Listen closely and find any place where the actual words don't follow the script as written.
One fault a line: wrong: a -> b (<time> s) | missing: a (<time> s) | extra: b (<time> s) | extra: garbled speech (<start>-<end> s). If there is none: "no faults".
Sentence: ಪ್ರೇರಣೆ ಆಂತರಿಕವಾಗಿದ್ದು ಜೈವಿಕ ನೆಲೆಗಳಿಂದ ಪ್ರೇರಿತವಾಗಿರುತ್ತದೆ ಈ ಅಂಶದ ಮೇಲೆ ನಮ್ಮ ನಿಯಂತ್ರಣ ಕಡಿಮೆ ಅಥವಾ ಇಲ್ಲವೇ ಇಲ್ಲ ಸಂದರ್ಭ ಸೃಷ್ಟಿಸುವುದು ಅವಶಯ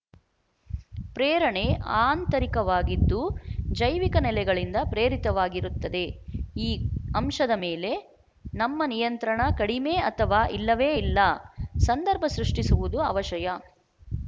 no faults